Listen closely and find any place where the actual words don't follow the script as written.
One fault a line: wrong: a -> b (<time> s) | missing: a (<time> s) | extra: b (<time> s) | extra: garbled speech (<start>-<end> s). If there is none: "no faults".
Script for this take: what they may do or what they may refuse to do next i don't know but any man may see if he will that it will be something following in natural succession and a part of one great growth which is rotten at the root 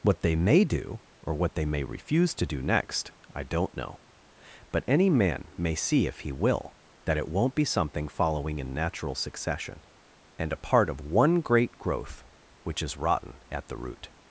wrong: will -> won't (7.3 s)